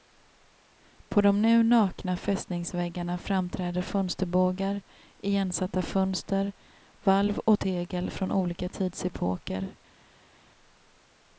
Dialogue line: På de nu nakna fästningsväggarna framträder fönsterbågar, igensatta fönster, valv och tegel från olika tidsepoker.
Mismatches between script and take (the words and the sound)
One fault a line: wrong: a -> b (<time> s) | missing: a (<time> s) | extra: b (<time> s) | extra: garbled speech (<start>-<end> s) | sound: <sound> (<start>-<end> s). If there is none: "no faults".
no faults